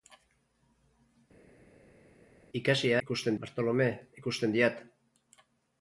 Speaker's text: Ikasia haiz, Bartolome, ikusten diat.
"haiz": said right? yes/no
no